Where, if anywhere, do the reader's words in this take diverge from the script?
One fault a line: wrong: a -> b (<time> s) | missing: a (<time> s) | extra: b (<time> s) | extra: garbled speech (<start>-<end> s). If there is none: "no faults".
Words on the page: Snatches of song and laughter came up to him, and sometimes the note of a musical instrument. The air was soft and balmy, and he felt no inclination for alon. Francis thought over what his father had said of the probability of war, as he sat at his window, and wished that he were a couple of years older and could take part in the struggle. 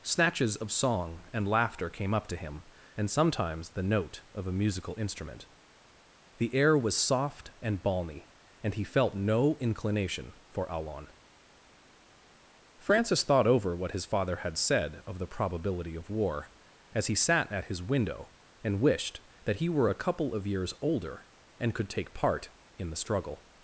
no faults